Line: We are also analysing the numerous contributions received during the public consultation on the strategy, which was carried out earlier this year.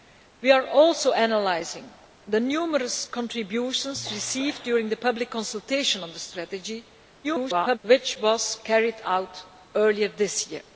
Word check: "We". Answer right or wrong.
right